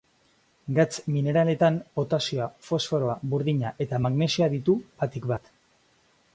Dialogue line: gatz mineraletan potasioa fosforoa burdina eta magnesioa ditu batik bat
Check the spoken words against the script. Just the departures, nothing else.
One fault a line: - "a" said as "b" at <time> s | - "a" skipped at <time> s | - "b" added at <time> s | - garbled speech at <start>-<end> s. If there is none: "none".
none